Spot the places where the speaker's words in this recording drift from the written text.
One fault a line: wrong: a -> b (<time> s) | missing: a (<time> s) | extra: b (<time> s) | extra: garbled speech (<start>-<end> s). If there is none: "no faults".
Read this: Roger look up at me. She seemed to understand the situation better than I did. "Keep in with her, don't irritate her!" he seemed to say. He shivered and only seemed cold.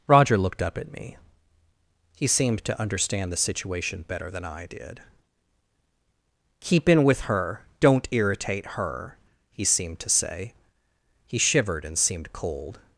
wrong: look -> looked (0.4 s)
wrong: She -> He (2.1 s)
missing: only (12.0 s)